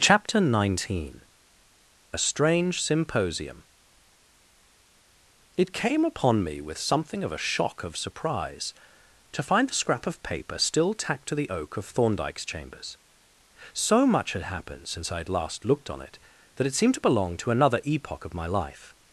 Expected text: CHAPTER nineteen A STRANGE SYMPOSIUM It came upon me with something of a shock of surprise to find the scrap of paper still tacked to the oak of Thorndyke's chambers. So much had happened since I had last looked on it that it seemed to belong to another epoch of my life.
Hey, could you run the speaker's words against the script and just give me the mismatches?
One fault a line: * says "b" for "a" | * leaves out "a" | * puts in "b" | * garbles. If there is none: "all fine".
all fine